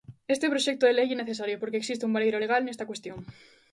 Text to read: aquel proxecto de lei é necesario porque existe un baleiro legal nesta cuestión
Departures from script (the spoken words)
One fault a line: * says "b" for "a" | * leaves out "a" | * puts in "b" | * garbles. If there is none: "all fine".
* says "este" for "aquel"